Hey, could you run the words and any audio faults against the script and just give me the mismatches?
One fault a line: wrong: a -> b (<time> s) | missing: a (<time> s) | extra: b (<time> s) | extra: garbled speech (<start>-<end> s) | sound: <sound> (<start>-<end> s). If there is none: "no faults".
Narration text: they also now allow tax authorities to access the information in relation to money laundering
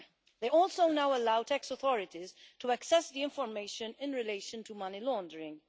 no faults